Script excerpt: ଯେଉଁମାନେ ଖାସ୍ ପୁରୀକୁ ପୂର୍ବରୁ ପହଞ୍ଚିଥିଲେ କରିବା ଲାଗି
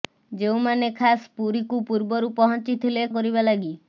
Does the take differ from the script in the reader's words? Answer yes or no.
no